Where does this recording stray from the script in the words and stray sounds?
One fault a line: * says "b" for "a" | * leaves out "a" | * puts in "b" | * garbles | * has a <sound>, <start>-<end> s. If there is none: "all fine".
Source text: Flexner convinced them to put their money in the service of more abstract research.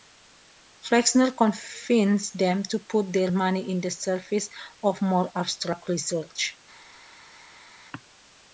all fine